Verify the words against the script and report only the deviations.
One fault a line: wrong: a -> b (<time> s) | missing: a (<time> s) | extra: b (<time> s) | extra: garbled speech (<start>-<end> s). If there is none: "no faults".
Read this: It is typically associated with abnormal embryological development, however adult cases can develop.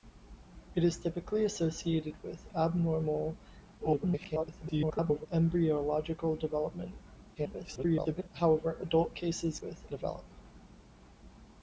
extra: garbled speech (3.8-5.3 s)
extra: garbled speech (7.3-8.3 s)
wrong: can -> with (9.6 s)